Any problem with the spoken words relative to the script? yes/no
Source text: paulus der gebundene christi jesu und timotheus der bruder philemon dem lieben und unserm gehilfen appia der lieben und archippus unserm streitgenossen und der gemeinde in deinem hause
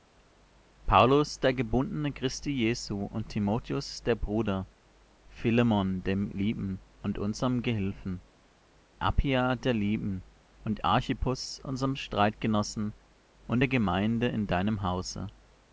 no